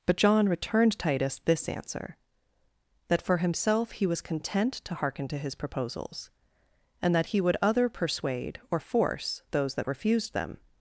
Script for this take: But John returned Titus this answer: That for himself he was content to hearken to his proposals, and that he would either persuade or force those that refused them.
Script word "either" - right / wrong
wrong